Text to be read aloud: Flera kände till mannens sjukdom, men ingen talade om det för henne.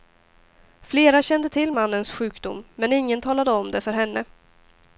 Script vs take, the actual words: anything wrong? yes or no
no